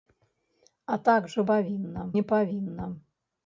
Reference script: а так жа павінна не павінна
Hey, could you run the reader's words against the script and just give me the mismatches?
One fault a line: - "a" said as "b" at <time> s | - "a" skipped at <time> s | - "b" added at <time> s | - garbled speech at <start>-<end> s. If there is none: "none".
none